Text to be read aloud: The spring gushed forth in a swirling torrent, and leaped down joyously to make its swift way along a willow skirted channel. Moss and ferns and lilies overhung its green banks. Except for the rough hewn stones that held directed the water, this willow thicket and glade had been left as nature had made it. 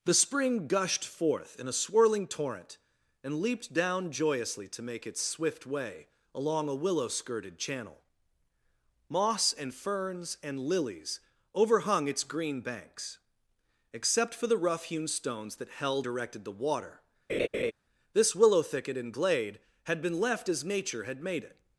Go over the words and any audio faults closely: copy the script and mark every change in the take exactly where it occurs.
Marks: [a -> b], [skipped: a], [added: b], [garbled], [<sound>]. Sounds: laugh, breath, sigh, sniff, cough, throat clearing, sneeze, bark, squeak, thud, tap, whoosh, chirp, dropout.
The spring gushed forth in a swirling torrent, and leaped down joyously to make its swift way along a willow skirted channel. Moss and ferns and lilies overhung its green banks. Except for the rough hewn stones that held directed the water, [laugh] this willow thicket and glade had been left as nature had made it.